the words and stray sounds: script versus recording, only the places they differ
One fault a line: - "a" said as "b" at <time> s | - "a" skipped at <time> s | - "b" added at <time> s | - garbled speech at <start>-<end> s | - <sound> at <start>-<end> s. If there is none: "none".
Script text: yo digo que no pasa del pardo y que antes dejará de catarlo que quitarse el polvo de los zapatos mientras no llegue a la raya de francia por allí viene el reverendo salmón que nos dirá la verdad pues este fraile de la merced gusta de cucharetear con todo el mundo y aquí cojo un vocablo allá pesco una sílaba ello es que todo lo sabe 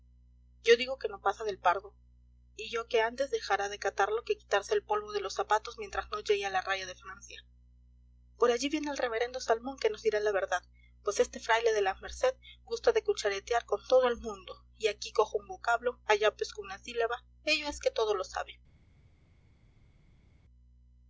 - "yo" added at 2.7 s